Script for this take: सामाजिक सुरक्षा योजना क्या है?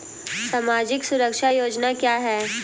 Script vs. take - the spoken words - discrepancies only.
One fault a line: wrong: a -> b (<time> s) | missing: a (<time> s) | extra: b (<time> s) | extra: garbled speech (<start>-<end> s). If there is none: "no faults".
no faults